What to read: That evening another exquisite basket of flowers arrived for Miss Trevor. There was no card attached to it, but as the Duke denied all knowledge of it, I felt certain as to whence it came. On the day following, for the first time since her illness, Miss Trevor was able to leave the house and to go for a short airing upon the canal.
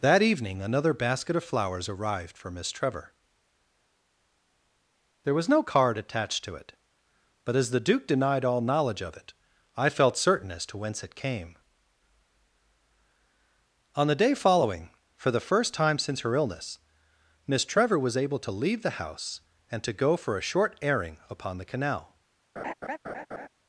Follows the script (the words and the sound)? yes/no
no